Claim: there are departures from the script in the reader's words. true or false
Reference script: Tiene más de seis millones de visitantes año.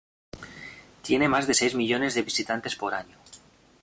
true